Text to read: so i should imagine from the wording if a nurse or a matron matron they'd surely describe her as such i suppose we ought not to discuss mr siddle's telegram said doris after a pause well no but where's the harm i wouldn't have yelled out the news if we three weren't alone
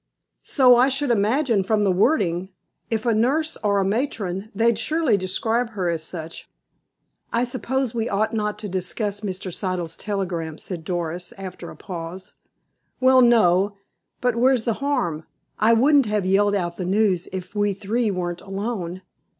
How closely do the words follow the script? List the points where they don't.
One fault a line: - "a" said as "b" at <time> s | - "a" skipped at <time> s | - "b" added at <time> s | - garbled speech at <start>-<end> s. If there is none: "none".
- "matron" skipped at 4.5 s